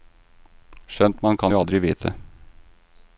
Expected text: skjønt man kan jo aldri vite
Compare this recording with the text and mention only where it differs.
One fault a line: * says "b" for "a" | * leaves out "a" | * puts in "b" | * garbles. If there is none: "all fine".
all fine